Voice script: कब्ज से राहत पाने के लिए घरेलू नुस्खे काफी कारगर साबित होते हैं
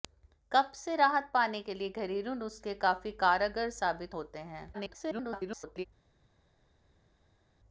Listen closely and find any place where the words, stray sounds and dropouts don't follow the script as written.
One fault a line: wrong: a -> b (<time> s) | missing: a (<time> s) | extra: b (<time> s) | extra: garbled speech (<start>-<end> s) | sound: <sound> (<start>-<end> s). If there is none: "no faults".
extra: garbled speech (4.7-5.9 s)